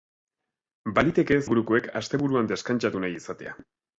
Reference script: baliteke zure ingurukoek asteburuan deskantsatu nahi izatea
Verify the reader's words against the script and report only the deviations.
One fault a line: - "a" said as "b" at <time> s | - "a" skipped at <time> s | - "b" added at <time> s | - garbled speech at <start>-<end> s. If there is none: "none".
- "zure" skipped at 1.4 s